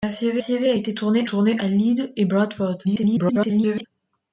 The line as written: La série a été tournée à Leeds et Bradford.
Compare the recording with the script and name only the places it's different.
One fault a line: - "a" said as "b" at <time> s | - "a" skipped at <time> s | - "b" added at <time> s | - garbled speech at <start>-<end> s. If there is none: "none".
- "série" added at 0.4 s
- "tournée" added at 1.2 s
- garbled speech at 2.8-3.9 s